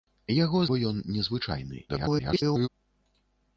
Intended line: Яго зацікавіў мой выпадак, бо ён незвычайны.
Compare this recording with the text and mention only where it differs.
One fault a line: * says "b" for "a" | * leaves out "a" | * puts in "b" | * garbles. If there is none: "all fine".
* leaves out "зацікавіў мой выпадак"
* garbles